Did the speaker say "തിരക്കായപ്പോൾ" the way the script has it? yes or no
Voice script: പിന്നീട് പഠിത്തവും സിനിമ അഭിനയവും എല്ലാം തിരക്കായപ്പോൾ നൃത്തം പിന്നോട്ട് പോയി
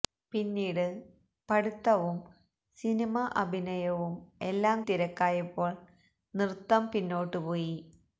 yes